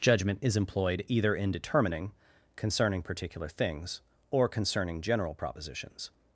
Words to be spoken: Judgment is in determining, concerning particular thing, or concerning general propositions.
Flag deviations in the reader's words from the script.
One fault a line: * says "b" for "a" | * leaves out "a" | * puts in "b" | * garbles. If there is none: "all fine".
* puts in "employed either"
* says "things" for "thing"